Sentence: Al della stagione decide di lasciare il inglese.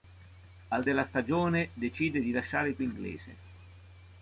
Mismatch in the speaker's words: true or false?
false